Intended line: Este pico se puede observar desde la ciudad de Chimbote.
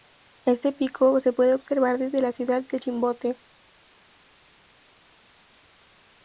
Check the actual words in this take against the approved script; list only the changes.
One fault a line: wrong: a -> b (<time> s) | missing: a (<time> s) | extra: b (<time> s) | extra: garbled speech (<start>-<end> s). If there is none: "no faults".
no faults